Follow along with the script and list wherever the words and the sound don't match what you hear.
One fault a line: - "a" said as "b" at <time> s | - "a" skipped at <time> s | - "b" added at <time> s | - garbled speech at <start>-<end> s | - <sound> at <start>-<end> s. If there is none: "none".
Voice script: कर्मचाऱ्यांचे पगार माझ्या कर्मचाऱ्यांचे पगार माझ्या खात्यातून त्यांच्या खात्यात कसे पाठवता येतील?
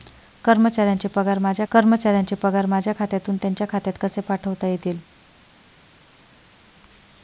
none